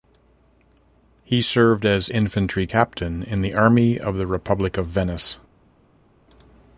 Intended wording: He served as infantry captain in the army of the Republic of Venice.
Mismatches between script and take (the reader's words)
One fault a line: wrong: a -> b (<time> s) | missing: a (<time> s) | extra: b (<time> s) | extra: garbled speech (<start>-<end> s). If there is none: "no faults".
no faults